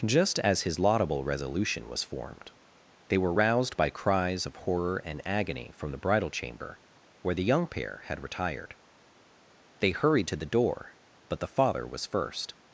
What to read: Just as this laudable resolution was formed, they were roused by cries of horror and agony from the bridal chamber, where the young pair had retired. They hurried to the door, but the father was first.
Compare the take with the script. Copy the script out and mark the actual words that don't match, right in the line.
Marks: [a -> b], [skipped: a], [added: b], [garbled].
Just as [this -> his] laudable resolution was formed, they were roused by cries of horror and agony from the bridal chamber, where the young pair had retired. They hurried to the door, but the father was first.